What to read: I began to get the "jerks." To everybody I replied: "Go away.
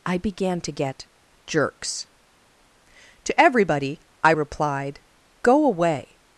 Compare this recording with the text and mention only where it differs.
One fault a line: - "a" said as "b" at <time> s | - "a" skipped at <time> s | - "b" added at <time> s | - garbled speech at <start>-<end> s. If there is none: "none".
- "the" skipped at 1.1 s